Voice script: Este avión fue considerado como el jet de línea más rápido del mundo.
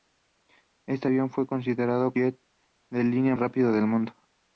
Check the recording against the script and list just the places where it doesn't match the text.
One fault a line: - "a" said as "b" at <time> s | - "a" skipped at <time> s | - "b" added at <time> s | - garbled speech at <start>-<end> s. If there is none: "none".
- "como el" skipped at 2.1 s
- "más" skipped at 3.3 s